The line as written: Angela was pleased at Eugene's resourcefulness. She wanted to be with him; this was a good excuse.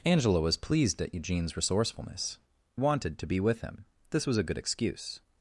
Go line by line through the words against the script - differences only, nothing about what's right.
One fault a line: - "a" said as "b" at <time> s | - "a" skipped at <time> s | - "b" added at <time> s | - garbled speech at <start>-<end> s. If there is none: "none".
- "She" skipped at 2.4 s